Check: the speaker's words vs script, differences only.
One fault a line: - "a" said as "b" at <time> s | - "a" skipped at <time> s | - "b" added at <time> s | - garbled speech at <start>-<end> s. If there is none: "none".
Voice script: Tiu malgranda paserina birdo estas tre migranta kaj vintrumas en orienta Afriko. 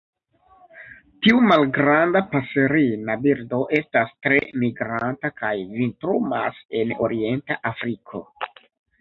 none